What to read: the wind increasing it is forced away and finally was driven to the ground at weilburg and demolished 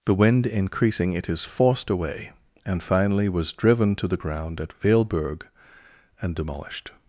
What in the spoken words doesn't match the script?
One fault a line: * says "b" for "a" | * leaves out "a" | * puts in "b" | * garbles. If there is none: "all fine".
all fine